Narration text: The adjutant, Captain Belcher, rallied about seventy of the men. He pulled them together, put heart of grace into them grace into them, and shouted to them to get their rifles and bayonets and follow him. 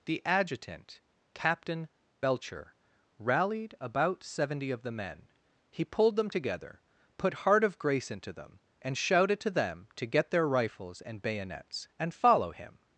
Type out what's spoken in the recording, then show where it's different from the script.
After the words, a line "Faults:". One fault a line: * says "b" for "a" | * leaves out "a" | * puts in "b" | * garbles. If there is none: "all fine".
The adjutant, Captain Belcher, rallied about seventy of the men. He pulled them together, put heart of grace into them, and shouted to them to get their rifles and bayonets and follow him.
Faults:
* leaves out "grace into them"